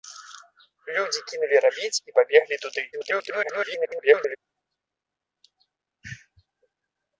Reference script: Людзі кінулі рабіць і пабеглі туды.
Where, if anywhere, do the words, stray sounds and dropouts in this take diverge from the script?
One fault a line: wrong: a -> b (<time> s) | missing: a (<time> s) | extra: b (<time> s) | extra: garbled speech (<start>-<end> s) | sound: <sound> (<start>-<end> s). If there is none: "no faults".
extra: garbled speech (2.9-4.4 s)